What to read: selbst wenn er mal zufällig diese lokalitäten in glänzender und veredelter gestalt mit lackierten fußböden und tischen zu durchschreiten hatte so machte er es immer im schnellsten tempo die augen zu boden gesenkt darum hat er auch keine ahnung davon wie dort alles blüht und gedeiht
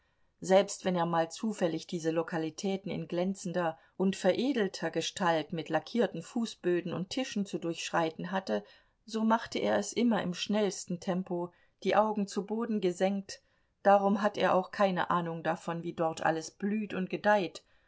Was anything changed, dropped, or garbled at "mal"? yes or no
no